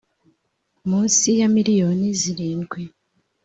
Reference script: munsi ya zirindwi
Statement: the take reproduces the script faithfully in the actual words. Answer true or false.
false